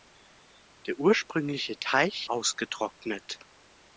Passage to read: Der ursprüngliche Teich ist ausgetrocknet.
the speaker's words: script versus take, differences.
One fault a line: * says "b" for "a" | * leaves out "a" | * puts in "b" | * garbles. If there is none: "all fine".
* leaves out "ist"